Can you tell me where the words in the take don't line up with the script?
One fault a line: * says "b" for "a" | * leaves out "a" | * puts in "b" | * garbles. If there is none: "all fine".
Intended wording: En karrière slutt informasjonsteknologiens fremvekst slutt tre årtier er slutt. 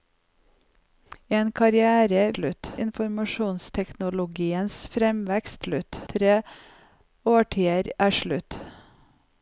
all fine